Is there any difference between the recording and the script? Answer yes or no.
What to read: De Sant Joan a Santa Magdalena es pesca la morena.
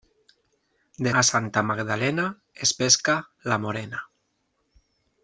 yes